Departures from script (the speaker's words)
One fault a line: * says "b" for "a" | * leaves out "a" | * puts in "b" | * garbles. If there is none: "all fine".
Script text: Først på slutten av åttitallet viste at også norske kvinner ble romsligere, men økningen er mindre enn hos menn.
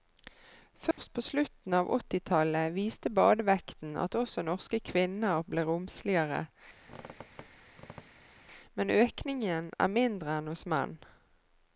* puts in "badevekten"